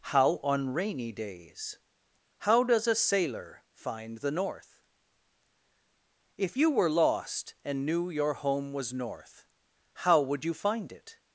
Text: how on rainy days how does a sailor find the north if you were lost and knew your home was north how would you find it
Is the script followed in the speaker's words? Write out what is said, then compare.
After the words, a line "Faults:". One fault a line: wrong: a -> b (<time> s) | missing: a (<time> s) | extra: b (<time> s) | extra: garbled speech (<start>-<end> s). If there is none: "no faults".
how on rainy days how does a sailor find the north if you were lost and knew your home was north how would you find it
Faults:
no faults